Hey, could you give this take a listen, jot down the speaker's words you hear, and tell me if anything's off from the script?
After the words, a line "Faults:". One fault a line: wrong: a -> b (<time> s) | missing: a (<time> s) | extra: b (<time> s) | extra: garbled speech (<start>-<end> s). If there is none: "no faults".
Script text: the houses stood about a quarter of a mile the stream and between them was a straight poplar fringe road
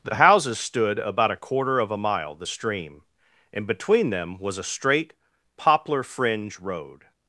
the houses stood about a quarter of a mile the stream and between them was a straight poplar fringe road
Faults:
no faults